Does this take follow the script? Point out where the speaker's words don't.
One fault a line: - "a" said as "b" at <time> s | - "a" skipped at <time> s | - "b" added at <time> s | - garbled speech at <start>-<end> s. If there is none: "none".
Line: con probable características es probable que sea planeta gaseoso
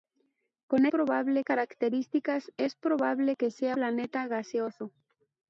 none